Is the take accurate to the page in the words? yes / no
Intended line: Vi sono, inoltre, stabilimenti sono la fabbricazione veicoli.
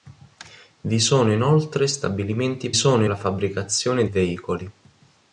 yes